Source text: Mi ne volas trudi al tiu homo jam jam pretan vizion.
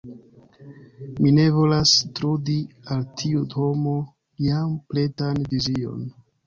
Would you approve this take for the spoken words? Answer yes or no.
no